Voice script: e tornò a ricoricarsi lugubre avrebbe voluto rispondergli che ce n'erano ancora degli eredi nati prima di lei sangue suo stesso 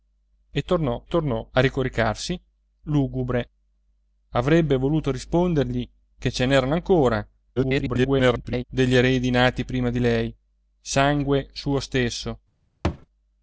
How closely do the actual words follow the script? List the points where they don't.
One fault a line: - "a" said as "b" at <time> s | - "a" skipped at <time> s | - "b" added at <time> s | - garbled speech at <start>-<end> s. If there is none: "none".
- "tornò" added at 1.1 s
- garbled speech at 7.6-8.6 s